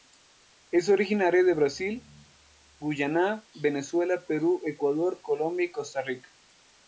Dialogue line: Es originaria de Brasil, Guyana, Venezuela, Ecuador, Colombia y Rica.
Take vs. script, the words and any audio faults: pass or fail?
fail